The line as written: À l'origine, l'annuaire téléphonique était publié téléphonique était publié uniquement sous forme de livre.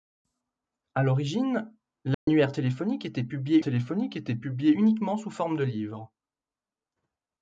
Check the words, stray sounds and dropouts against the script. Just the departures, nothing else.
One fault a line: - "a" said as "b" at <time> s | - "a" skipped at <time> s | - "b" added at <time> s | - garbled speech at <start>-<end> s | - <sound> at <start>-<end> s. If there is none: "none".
- dropout at 2.1-2.3 s